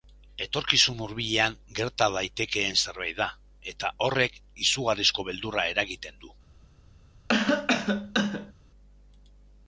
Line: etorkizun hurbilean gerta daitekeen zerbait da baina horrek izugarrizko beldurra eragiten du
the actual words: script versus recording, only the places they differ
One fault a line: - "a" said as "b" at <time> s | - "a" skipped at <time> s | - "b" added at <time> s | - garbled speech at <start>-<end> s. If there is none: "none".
- "baina" said as "eta" at 3.8 s